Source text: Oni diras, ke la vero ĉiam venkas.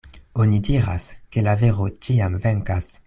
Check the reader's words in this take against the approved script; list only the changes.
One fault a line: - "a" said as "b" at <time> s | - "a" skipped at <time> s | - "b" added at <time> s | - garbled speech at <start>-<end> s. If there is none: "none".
none